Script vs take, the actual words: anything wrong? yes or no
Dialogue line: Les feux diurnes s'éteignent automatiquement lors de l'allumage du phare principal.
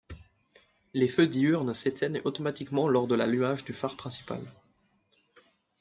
no